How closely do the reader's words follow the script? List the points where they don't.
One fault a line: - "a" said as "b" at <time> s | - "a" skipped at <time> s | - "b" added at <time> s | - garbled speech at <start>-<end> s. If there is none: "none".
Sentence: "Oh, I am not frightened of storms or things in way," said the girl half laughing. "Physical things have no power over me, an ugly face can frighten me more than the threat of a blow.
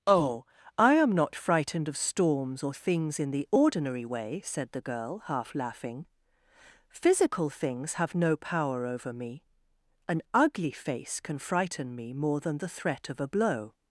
- "the ordinary" added at 3.3 s